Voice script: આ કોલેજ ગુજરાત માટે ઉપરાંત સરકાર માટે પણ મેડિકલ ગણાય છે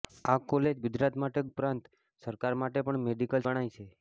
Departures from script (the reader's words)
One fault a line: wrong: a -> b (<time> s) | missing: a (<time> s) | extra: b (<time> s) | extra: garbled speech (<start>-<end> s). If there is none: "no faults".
no faults